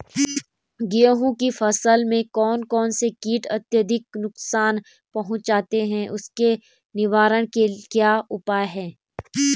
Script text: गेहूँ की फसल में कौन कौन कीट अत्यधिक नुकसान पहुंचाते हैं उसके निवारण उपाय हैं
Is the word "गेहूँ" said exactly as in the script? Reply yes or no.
yes